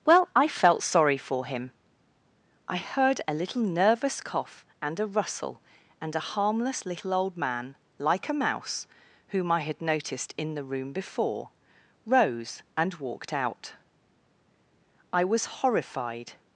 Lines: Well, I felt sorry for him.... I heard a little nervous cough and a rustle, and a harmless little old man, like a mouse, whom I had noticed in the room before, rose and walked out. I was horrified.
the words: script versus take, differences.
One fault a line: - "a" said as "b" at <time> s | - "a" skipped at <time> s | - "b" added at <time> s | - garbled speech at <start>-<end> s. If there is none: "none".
none